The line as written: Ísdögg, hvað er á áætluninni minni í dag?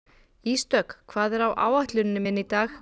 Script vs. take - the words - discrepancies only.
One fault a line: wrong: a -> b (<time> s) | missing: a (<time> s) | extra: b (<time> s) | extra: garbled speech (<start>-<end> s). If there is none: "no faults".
no faults